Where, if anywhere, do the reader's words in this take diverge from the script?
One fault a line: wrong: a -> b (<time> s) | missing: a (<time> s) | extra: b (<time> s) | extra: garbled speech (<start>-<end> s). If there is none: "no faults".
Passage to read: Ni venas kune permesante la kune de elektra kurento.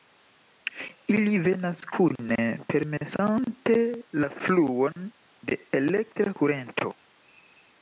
wrong: Ni -> Ili (1.1 s)
wrong: kune -> fluon (4.5 s)